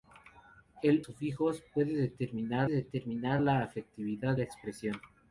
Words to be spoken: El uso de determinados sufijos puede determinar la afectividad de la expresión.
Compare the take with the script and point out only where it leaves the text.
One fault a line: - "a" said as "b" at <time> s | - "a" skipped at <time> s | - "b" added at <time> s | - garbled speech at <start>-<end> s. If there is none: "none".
- "uso de determinados" skipped at 1.1 s
- "determinar" added at 2.7 s
- "de" skipped at 4.4 s